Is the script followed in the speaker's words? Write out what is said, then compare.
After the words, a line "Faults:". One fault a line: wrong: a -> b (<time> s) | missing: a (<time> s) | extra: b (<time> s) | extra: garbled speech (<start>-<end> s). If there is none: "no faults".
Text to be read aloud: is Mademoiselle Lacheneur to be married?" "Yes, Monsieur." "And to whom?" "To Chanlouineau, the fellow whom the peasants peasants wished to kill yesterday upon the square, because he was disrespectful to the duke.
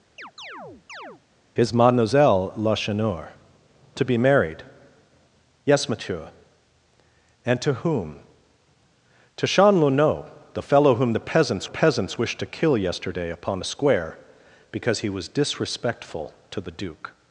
is Mademoiselle Lacheneur to be married?" "Yes, Monsieur." "And to whom?" "To Chanlouineau, the fellow whom the peasants peasants wished to kill yesterday upon the square, because he was disrespectful to the duke.
Faults:
no faults